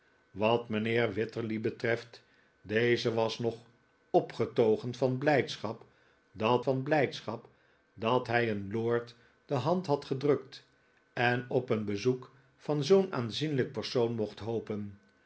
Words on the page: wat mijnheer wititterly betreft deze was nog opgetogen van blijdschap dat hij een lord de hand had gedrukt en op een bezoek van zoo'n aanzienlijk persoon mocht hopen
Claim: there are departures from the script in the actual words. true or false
true